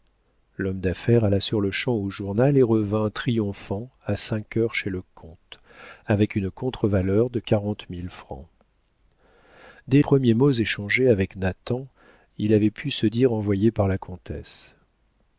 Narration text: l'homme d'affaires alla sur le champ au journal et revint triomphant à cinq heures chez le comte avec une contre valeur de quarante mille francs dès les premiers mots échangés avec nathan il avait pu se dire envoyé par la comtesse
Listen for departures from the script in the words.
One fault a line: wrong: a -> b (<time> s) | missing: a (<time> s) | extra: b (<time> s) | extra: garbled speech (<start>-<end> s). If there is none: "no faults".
missing: les (10.0 s)